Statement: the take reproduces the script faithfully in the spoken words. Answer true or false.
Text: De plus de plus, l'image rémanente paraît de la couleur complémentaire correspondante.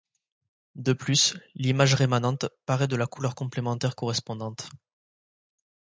false